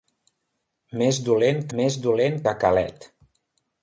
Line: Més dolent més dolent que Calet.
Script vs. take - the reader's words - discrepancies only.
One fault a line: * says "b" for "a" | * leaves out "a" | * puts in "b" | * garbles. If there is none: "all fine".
all fine